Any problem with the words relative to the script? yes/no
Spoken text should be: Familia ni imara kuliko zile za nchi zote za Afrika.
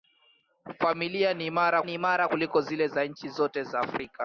yes